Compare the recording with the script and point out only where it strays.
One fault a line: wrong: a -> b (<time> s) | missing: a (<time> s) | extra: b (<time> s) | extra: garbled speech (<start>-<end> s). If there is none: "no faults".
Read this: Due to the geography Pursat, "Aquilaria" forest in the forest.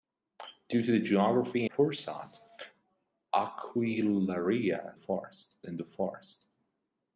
no faults